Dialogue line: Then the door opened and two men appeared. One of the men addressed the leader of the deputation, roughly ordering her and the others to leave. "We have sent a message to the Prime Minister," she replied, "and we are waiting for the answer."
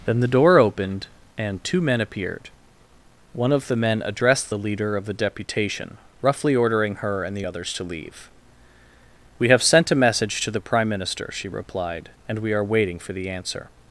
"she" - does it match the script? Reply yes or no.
yes